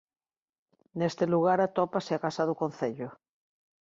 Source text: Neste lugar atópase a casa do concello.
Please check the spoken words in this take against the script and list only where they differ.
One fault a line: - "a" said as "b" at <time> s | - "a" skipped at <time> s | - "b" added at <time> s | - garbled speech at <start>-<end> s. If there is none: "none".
none